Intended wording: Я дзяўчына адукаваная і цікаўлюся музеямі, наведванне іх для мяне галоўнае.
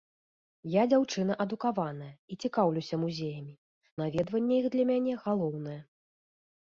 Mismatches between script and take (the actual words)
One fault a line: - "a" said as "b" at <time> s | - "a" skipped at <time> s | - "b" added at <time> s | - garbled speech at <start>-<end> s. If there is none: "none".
none